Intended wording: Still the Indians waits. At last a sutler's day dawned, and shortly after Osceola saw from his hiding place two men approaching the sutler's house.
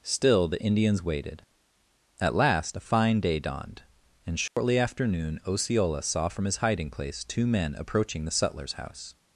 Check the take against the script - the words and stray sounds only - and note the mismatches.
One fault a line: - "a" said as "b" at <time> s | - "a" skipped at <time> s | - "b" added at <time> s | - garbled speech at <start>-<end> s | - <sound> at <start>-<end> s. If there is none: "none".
- "waits" said as "waited" at 1.0 s
- "sutler's" said as "fine" at 2.8 s
- dropout at 4.5-4.6 s
- "noon" added at 5.1 s